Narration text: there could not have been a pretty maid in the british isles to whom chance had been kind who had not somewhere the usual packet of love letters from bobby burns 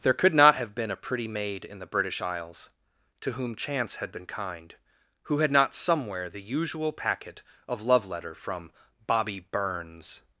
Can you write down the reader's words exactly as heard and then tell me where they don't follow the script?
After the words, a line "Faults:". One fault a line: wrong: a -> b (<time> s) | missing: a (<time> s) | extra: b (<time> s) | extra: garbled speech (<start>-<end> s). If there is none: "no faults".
there could not have been a pretty maid in the british isles to whom chance had been kind who had not somewhere the usual packet of love letter from bobby burns
Faults:
wrong: letters -> letter (8.1 s)